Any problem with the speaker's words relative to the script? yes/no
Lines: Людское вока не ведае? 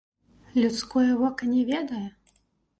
no